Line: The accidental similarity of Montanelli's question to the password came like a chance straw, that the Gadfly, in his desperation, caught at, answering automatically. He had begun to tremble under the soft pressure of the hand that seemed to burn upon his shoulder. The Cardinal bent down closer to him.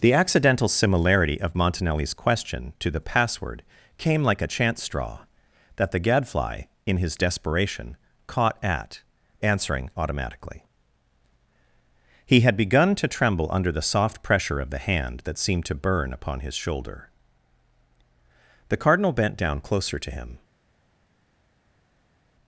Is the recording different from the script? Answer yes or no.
no